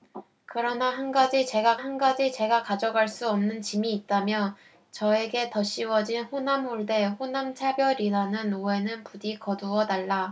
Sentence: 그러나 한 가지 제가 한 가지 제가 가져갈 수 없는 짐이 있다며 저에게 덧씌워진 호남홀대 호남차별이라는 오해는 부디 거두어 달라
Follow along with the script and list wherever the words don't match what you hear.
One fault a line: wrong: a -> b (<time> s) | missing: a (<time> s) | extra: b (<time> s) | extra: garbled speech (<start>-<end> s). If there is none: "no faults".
no faults